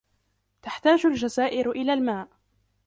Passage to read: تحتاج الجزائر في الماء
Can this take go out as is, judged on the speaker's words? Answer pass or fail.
fail